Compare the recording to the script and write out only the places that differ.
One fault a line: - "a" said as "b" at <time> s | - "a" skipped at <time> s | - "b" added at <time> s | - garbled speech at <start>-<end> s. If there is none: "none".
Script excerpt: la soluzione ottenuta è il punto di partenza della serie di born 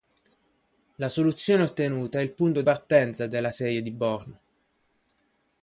- "di" skipped at 2.6 s